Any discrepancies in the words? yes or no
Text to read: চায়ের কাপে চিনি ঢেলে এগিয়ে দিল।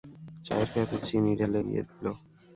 no